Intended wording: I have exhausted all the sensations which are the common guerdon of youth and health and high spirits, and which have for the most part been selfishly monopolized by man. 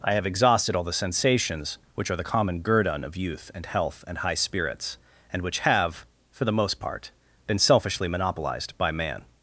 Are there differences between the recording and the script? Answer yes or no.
no